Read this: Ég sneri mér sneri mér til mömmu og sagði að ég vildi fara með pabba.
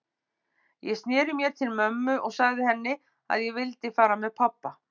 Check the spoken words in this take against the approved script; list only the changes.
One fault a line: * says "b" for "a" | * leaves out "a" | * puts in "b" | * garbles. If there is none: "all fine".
* leaves out "sneri mér"
* puts in "henni"